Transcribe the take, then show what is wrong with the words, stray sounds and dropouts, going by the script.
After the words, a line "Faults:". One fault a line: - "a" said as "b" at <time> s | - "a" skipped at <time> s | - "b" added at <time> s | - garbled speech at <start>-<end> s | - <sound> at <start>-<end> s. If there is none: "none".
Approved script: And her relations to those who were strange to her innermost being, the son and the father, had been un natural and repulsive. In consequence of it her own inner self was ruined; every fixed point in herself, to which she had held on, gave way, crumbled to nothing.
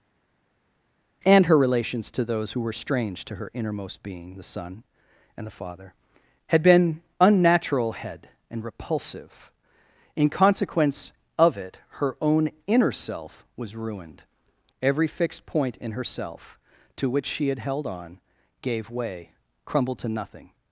And her relations to those who were strange to her innermost being, the son and the father, had been unnatural head and repulsive. In consequence of it her own inner self was ruined; every fixed point in herself, to which she had held on, gave way, crumbled to nothing.
Faults:
- "un natural" said as "unnatural head" at 7.2 s